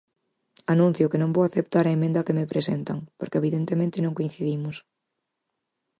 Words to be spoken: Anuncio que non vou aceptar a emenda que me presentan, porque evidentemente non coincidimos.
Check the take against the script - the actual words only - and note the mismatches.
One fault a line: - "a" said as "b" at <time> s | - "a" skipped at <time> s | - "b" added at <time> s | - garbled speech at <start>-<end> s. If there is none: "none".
none